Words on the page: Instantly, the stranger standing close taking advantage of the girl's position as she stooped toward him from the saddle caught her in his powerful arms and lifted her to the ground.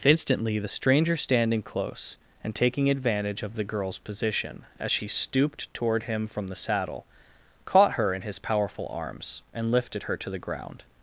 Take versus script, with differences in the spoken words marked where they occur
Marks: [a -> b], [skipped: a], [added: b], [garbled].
Instantly, the stranger standing close [added: and] taking advantage of the girl's position as she stooped toward him from the saddle caught her in his powerful arms and lifted her to the ground.